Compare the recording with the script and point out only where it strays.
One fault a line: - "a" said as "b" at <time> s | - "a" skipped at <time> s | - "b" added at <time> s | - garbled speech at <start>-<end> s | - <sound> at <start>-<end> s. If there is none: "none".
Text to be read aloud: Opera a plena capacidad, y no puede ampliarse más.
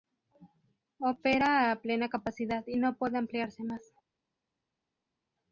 none